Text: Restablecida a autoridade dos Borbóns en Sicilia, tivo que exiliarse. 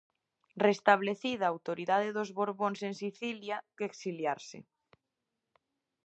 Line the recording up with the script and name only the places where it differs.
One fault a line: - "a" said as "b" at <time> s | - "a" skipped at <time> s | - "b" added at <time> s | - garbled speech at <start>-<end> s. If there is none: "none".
- "tivo" skipped at 3.6 s